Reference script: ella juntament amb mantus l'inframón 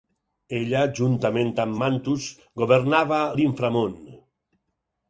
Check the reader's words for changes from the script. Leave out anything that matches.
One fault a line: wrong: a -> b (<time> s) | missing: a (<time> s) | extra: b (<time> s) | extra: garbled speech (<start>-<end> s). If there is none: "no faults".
extra: governava (2.6 s)